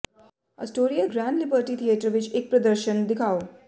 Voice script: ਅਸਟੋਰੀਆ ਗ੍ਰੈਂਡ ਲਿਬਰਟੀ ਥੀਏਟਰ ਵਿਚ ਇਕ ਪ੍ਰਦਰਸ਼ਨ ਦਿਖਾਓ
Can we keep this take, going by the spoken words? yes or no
yes